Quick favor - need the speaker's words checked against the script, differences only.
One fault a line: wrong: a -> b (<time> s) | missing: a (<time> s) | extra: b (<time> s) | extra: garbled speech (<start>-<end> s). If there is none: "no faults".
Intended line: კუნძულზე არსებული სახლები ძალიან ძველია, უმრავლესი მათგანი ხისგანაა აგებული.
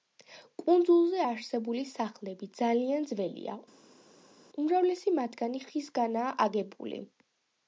no faults